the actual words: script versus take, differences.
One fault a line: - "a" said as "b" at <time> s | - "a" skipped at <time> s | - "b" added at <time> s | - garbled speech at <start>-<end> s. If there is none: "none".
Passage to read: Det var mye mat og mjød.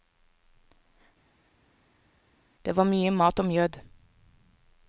none